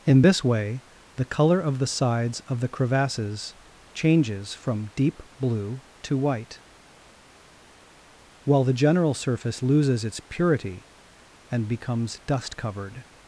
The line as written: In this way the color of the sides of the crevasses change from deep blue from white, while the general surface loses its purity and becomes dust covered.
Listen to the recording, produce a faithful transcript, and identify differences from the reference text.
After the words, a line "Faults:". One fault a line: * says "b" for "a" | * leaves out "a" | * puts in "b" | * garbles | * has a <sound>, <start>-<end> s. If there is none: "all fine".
In this way the color of the sides of the crevasses changes from deep blue to white, while the general surface loses its purity and becomes dust covered.
Faults:
* says "changes" for "change"
* says "to" for "from"